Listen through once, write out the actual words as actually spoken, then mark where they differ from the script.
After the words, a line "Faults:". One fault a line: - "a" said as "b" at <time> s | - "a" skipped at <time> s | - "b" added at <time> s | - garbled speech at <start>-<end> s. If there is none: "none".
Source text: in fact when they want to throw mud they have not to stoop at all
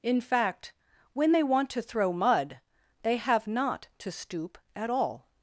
in fact when they want to throw mud they have not to stoop at all
Faults:
none